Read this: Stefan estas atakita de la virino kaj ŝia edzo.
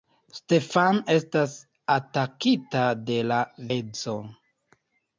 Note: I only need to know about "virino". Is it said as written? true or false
false